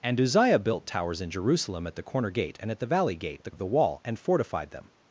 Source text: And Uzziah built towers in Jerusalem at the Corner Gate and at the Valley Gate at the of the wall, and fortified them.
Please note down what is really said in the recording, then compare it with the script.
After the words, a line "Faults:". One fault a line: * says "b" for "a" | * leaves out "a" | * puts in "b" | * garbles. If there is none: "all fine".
And Uzziah built towers in Jerusalem at the Corner Gate and at the Valley Gate at the of the wall, and fortified them.
Faults:
all fine